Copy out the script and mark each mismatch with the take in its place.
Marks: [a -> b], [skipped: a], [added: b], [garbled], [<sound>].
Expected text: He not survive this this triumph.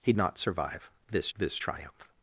He not survive this this triumph.